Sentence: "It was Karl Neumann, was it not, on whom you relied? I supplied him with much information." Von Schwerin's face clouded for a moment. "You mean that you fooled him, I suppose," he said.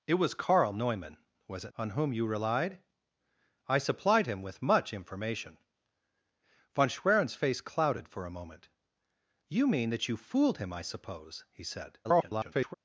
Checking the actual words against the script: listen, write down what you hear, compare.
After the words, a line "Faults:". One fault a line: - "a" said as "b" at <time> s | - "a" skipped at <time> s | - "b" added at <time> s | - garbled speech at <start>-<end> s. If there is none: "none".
"It was Karl Neumann, was it on whom you relied? I supplied him with much information." Von Schwerin's face clouded for a moment. "You mean that you fooled him, I suppose," he said. [garbled]
Faults:
- "not" skipped at 1.7 s
- garbled speech at 12.0-12.7 s